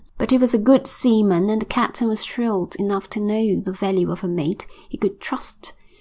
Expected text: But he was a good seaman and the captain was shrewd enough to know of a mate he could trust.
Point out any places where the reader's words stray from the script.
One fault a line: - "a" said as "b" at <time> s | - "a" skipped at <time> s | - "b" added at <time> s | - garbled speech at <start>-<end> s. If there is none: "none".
- "the value" added at 3.6 s